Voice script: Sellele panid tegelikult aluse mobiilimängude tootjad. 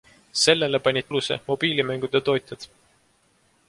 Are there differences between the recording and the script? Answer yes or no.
yes